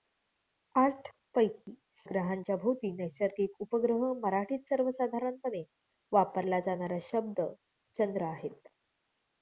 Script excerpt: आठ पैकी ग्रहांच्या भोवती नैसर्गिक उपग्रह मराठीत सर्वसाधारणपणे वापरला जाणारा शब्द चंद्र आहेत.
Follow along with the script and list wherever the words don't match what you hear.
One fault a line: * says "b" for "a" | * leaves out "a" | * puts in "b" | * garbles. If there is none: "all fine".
all fine